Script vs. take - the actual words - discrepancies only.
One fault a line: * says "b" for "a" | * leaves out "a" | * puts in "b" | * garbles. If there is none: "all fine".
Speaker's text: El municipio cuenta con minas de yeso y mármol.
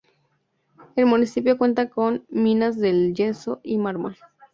all fine